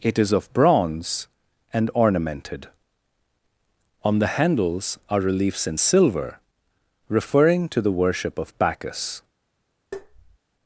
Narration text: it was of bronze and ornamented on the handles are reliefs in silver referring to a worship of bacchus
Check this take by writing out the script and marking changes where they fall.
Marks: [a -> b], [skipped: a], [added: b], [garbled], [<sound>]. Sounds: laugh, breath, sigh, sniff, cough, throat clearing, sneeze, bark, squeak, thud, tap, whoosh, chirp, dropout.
it [was -> is] of bronze and ornamented on the handles are reliefs in silver referring to [a -> the] worship of bacchus [tap]